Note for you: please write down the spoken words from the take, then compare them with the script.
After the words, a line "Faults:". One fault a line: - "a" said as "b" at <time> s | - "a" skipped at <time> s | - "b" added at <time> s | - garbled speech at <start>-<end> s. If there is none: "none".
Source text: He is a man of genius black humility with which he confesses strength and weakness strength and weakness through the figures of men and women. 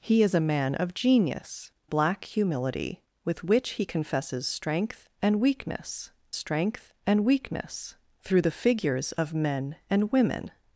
He is a man of genius black humility with which he confesses strength and weakness strength and weakness through the figures of men and women.
Faults:
none